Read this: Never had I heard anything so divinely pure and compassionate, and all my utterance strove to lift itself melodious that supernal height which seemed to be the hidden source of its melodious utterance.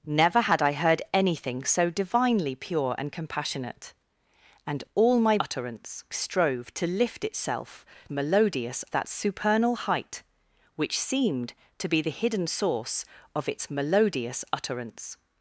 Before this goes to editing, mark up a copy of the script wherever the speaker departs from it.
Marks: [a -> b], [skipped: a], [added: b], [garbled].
Never had I heard anything so divinely pure and compassionate, and all my utterance strove to lift itself melodious that supernal height which seemed to be the hidden source of its melodious utterance.